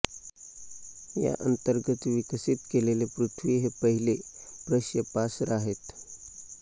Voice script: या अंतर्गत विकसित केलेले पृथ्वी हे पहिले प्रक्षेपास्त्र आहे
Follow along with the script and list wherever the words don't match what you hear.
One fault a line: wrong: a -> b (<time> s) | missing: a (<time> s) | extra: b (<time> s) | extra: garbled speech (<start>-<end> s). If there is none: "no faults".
no faults